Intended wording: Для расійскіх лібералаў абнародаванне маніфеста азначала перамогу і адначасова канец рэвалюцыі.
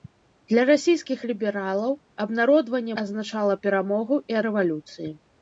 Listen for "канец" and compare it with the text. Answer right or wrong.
wrong